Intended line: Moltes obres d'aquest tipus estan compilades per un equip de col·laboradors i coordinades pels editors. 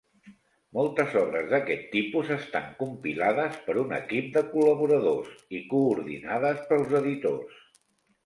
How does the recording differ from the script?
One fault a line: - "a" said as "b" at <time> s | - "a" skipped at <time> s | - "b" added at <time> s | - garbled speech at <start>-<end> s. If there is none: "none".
none